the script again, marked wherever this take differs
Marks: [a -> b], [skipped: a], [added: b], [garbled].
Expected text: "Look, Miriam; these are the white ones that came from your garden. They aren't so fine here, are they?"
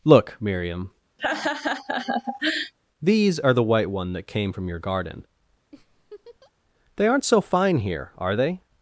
"Look, Miriam; these are the white [ones -> one] that came from your garden. They aren't so fine here, are they?"